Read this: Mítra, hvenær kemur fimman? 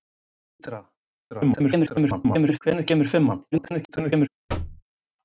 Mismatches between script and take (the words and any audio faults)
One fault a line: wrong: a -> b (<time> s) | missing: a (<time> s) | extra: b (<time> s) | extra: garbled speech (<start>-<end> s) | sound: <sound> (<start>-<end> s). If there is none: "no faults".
extra: garbled speech (1.3-2.6 s)
extra: garbled speech (3.5-4.3 s)
sound: thud (4.5-4.8 s)